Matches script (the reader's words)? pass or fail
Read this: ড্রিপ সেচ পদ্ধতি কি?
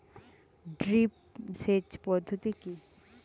pass